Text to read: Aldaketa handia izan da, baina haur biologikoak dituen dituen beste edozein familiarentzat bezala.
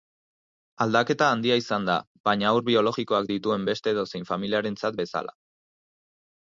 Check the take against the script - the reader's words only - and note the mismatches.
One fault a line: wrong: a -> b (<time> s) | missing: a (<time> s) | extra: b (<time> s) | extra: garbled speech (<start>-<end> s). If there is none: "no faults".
missing: dituen (3.7 s)